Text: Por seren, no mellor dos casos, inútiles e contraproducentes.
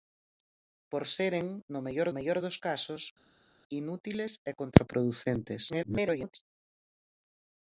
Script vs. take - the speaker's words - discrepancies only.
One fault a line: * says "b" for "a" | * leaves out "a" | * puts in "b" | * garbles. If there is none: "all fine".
* puts in "mellor"
* garbles